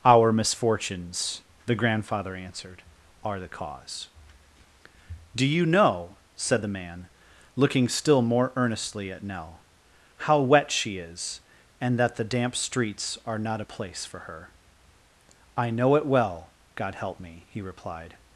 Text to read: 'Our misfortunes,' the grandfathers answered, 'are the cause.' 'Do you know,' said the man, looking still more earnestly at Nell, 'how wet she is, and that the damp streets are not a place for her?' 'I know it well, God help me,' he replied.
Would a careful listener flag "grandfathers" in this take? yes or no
yes